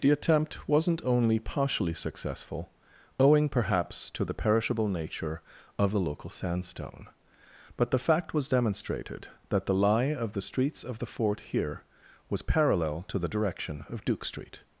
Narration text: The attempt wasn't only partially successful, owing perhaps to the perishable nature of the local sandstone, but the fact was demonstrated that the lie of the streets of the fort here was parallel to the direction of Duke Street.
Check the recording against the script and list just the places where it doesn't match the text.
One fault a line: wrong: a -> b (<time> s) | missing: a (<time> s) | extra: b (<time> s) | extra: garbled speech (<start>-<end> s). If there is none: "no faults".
no faults